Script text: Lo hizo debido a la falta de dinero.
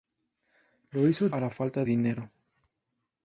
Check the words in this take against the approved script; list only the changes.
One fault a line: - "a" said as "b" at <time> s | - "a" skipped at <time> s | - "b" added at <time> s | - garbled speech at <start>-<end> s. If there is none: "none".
- "debido" skipped at 1.3 s
- "de" skipped at 1.9 s